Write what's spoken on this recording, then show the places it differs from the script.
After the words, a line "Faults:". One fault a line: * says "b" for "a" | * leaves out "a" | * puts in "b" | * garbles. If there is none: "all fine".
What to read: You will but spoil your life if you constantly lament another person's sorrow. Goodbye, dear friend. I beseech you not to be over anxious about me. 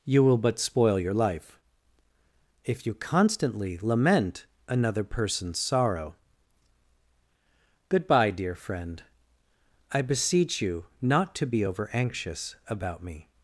You will but spoil your life if you constantly lament another person's sorrow. Goodbye, dear friend. I beseech you not to be over anxious about me.
Faults:
all fine